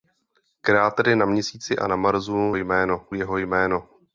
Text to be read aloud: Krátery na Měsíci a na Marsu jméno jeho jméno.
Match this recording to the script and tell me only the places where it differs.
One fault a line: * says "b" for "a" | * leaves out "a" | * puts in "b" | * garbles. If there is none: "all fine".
all fine